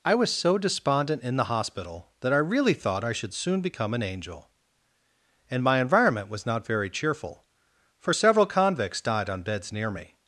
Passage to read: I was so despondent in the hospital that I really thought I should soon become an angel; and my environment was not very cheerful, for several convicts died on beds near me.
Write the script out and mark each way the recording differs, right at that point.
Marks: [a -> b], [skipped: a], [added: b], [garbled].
I was so despondent in the hospital that I really thought I should soon become an angel; and my environment was not very cheerful, for several convicts died on beds near me.